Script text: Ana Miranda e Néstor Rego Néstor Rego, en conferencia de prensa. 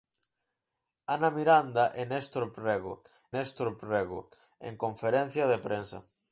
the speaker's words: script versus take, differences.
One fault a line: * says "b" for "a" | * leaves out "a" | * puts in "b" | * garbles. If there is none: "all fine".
all fine